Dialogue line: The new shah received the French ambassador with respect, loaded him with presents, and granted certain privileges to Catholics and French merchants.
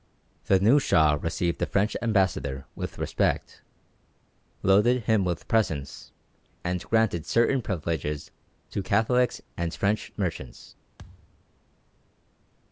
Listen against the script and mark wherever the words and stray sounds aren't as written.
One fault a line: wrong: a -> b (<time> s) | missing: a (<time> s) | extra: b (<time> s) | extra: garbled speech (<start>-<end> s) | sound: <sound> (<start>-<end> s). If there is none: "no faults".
sound: thud (11.0-11.4 s)